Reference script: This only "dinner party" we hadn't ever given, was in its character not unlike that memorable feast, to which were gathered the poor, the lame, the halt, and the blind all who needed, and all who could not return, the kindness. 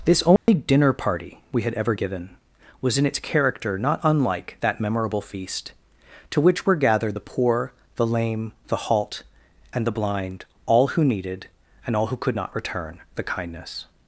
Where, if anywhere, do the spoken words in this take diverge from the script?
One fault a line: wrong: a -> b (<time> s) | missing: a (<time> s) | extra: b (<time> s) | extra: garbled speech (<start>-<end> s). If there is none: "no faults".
wrong: hadn't -> had (1.6 s)